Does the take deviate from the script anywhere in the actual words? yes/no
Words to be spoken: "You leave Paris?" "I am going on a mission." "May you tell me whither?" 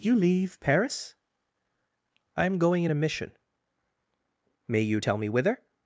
yes